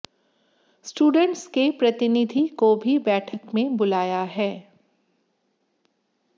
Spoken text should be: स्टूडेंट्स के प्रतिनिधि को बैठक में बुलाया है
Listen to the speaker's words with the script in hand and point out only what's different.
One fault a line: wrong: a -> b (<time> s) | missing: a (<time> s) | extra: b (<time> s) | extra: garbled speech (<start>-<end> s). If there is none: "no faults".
extra: भी (2.8 s)